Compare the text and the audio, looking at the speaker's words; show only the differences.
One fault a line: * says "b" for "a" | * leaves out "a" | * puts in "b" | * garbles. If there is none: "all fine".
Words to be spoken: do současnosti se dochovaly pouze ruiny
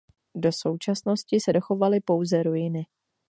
all fine